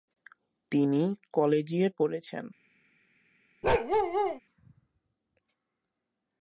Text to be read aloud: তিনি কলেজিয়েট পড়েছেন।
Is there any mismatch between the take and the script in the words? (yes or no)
no